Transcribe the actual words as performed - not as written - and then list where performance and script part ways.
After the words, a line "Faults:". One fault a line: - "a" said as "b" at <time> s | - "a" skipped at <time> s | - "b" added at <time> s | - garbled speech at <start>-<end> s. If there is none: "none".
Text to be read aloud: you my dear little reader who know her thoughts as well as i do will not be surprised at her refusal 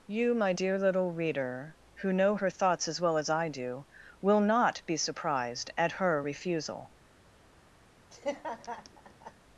you my dear little reader who know her thoughts as well as i do will not be surprised at her refusal
Faults:
none